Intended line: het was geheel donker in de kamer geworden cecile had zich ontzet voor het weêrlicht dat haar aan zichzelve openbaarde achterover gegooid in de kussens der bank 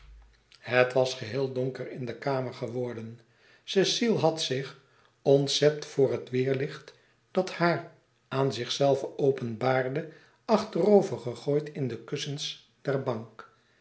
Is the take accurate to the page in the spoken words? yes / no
yes